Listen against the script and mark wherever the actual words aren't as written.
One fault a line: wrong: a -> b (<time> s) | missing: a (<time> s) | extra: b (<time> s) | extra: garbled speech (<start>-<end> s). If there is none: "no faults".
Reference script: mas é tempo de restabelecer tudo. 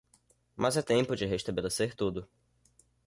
no faults